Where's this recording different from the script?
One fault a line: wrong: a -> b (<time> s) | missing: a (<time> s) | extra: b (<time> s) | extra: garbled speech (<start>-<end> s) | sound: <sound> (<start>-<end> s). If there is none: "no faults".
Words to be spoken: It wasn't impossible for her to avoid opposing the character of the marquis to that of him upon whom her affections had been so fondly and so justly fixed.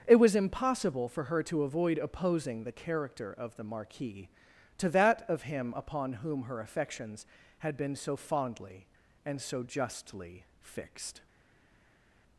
wrong: wasn't -> was (0.1 s)